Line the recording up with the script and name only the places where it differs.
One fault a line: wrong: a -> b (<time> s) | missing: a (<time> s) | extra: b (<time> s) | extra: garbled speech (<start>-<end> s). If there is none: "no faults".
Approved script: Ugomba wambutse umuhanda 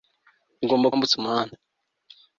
no faults